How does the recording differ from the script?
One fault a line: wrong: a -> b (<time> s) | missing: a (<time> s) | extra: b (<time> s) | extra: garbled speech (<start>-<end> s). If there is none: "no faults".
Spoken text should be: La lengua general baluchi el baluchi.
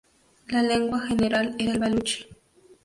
wrong: baluchi -> era (1.6 s)